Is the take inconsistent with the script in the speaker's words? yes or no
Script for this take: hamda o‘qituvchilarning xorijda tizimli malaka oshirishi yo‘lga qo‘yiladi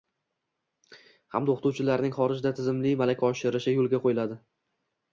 no